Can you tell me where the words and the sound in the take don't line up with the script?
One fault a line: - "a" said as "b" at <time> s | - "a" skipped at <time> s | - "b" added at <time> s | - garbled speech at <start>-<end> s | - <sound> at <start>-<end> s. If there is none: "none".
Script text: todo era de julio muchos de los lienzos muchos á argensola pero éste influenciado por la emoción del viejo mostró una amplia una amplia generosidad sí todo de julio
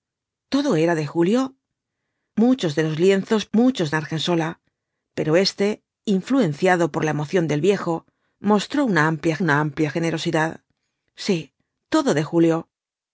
none